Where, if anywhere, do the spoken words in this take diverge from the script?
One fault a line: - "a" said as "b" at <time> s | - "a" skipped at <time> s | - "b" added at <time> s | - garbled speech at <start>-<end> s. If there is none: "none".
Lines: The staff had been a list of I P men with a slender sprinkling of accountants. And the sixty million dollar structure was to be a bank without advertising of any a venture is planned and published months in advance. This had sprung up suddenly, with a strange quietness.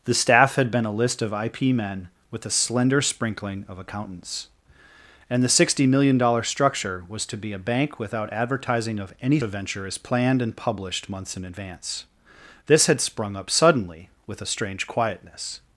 none